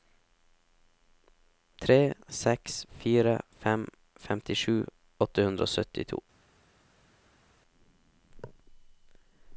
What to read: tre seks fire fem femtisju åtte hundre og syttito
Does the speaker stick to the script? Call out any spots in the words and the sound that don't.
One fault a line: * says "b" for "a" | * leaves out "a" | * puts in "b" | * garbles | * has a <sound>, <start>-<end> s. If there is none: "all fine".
all fine